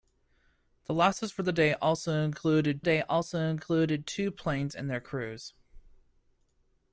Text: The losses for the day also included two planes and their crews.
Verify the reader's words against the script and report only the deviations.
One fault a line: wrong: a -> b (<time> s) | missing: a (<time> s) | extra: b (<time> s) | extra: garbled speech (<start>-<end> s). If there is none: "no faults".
extra: day also included (2.8 s)